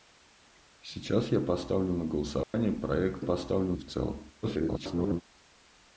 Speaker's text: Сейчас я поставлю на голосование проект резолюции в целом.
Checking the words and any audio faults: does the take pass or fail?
fail